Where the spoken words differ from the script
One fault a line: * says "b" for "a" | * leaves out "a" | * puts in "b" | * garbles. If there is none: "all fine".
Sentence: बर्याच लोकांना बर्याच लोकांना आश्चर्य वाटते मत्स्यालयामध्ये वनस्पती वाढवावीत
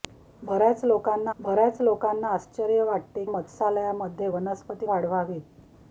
all fine